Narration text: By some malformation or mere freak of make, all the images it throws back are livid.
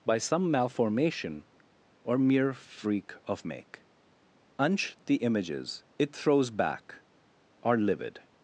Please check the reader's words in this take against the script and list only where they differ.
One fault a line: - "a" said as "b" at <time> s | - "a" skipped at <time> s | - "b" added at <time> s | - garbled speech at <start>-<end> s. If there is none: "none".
- "all" said as "unch" at 4.6 s